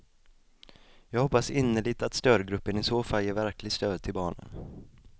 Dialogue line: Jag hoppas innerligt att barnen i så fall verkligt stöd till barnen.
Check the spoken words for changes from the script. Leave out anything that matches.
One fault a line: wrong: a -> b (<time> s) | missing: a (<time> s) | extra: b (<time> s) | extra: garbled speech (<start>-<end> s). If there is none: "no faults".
wrong: barnen -> stödgruppen (2.1 s)
extra: ger (3.2 s)